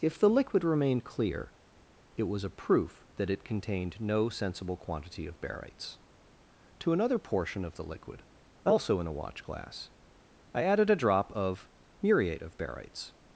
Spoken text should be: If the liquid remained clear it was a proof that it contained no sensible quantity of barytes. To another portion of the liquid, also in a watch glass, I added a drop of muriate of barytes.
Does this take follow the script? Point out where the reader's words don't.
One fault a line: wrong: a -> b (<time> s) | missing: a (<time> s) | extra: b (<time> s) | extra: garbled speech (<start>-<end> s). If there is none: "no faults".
no faults